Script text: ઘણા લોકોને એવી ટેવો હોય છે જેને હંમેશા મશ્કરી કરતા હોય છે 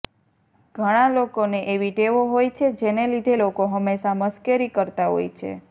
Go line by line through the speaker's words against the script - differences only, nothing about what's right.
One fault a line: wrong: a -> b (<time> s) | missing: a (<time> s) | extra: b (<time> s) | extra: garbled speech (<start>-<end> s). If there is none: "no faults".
extra: લીધે લોકો (3.1 s)